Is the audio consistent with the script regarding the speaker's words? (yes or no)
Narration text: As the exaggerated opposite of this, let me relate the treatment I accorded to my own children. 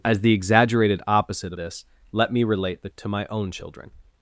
no